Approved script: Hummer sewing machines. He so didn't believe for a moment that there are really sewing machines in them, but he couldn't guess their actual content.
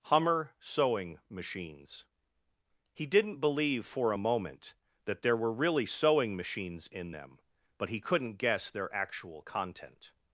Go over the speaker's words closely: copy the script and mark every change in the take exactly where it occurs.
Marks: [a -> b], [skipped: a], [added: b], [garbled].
Hummer sewing machines. He [skipped: so] didn't believe for a moment that there [are -> were] really sewing machines in them, but he couldn't guess their actual content.